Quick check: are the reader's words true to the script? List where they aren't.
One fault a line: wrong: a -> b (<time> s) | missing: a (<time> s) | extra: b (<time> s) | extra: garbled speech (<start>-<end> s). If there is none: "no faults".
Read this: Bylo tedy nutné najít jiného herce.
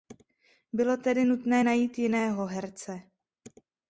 no faults